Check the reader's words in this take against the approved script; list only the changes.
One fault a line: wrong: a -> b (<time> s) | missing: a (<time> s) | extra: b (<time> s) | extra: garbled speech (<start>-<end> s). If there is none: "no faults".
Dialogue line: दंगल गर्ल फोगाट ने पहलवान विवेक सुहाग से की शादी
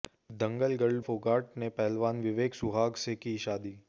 no faults